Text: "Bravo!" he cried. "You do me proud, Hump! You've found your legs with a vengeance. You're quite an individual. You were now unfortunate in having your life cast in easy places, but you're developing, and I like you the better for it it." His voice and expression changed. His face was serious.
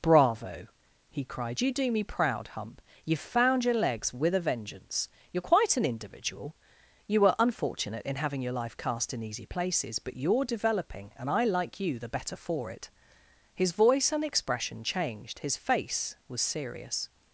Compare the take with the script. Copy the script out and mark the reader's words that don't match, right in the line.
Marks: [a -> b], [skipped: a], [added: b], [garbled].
"Bravo!" he cried. "You do me proud, Hump! You've found your legs with a vengeance. You're quite an individual. You were [skipped: now] unfortunate in having your life cast in easy places, but you're developing, and I like you the better for it [skipped: it."] His voice and expression changed. His face was serious.